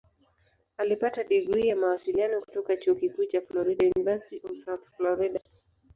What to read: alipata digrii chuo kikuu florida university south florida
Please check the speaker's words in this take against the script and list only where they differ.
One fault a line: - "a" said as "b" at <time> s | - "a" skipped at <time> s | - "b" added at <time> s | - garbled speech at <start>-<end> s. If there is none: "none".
- "ya mawasiliano kutoka" added at 1.7 s
- "cha" added at 3.3 s
- "of" added at 4.4 s